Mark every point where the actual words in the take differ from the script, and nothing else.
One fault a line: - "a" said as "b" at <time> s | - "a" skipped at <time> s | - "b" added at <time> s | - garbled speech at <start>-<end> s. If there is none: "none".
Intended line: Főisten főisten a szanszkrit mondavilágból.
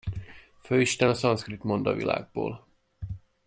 - "főisten" skipped at 1.1 s